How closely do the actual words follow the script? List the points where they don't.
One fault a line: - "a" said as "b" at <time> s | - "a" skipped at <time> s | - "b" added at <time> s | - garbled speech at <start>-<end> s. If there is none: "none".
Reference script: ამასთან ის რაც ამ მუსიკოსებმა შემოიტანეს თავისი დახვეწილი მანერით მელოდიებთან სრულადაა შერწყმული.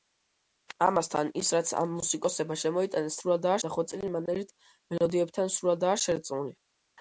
- "თავისი" said as "სრულადაა" at 3.2 s